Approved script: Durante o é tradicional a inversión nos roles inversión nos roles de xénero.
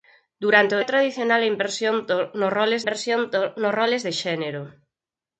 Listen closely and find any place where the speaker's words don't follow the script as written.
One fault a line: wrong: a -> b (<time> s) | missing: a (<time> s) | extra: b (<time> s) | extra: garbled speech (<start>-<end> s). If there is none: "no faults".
no faults